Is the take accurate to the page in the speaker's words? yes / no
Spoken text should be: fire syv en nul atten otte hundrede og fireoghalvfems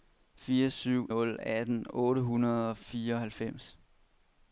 no